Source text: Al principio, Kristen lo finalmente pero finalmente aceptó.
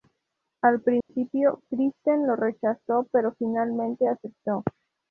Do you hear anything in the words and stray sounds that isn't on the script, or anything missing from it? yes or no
yes